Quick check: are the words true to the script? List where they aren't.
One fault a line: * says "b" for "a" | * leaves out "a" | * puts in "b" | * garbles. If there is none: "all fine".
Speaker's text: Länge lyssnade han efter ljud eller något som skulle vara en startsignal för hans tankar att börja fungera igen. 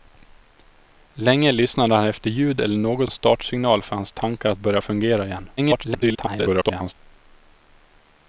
* leaves out "som skulle vara"
* garbles